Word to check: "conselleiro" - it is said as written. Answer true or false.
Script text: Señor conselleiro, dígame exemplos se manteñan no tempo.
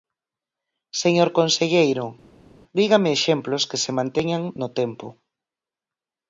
true